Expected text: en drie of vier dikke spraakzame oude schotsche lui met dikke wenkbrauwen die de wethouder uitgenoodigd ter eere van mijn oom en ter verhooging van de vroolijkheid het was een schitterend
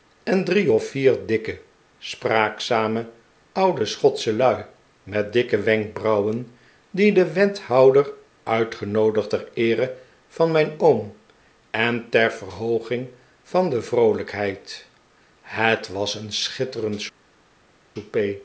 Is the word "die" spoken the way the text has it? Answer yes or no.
yes